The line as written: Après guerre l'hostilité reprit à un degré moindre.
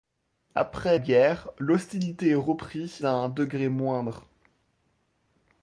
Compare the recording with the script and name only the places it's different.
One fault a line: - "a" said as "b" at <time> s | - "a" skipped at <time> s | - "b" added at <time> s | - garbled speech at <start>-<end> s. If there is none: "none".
none